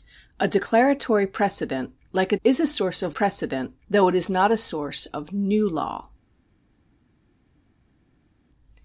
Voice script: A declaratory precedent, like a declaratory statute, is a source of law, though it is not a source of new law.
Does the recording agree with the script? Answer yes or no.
no